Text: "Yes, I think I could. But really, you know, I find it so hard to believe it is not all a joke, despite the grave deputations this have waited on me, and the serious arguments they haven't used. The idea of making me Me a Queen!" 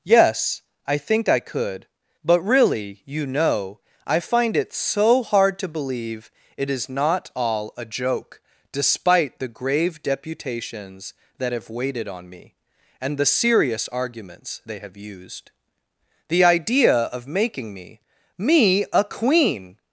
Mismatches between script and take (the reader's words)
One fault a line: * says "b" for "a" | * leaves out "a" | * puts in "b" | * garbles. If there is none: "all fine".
* says "that" for "this"
* says "have" for "haven't"